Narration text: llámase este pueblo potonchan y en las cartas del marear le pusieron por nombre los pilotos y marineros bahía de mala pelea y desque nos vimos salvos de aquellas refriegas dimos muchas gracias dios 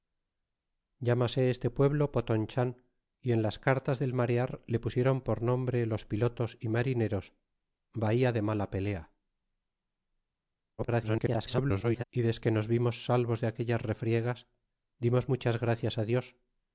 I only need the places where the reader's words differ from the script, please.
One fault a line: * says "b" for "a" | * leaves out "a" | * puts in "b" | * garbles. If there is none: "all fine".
* garbles